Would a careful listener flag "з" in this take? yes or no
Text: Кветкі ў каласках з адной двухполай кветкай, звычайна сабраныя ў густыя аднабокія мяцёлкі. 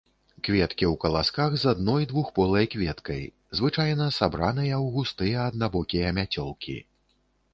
no